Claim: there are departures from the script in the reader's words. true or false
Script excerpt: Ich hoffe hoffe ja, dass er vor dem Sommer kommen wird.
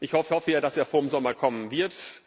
false